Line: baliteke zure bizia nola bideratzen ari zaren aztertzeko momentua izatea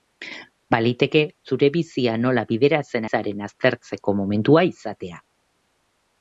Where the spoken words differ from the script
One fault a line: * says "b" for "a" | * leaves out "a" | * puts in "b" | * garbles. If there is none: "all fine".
* leaves out "ari"